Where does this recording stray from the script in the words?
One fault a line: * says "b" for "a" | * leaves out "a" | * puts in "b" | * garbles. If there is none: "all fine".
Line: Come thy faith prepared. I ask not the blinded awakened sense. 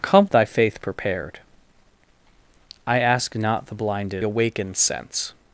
all fine